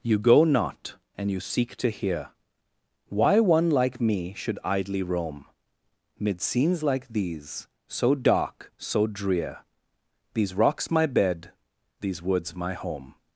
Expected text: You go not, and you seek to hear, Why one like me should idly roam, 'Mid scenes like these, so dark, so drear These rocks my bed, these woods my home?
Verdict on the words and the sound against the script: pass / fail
pass